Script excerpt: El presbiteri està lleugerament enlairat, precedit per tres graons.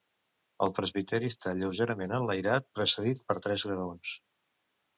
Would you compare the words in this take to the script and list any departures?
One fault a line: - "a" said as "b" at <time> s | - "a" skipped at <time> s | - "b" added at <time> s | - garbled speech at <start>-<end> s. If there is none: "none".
none